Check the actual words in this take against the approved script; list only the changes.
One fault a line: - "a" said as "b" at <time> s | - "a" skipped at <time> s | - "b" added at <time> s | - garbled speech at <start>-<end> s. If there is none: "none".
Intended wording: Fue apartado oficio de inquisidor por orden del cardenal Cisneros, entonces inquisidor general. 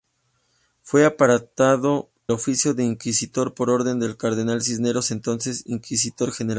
none